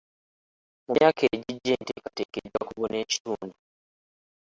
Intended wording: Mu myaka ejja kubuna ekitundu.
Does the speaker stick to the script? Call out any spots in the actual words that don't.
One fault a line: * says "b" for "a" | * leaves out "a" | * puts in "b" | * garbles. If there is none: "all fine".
* puts in "egijja enteekateeka"